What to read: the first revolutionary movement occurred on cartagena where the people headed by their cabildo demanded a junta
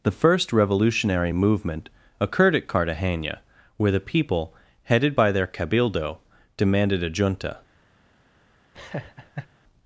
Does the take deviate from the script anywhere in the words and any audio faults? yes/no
yes